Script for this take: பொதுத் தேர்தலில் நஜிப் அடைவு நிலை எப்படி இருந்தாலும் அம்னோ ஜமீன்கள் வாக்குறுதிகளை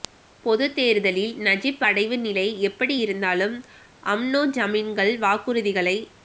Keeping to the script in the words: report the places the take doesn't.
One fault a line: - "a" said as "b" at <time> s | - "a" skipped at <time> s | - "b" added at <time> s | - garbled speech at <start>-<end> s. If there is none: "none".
none